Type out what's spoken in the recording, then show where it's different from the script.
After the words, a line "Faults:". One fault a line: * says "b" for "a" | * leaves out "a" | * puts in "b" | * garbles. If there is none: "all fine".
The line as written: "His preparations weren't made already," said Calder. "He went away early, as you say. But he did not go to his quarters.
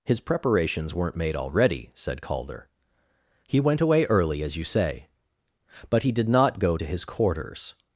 "His preparations weren't made already," said Calder. "He went away early, as you say. But he did not go to his quarters.
Faults:
all fine